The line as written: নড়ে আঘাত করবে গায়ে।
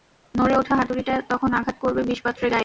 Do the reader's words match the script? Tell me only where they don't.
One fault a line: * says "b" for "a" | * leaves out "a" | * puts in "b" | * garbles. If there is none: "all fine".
* puts in "ওঠা হাতুড়িটা তখন"
* puts in "বিষপাত্রের"